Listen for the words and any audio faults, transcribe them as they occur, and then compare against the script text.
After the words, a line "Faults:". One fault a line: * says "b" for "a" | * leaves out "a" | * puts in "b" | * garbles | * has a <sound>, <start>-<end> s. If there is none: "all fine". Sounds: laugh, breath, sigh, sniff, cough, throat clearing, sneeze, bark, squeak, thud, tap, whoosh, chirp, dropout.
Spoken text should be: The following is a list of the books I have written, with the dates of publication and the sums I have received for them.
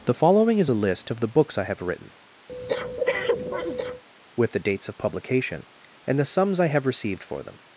The following is a list of the books I have written, with the dates of publication and the sums I have received for them.
Faults:
* has a breath, 2.5-4.0 s